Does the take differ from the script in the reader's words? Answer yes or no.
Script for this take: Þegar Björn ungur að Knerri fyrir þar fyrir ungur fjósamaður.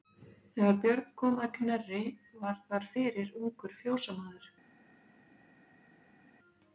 yes